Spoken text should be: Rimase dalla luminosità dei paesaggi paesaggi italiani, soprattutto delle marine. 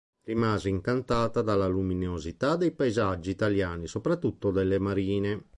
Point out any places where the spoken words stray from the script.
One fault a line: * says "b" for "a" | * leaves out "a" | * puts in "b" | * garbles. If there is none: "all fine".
* puts in "incantata"
* leaves out "paesaggi"